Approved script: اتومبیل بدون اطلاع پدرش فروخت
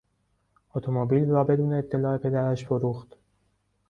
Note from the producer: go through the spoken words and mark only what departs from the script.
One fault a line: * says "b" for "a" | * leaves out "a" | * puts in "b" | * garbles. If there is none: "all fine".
* puts in "را"